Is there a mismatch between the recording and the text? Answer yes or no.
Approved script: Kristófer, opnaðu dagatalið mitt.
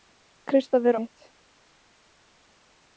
yes